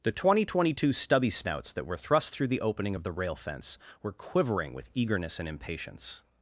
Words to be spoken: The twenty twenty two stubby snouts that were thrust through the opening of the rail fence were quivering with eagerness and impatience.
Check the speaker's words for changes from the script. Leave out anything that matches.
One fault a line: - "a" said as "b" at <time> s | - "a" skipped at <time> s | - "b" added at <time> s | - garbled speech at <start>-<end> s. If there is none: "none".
none